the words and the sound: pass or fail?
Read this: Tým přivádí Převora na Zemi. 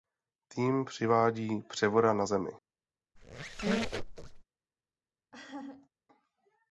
fail